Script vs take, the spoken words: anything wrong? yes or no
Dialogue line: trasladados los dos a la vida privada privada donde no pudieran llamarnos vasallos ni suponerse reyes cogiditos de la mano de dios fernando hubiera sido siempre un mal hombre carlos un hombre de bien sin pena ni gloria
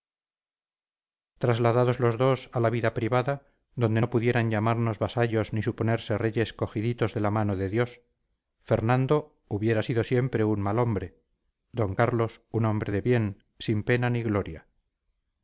yes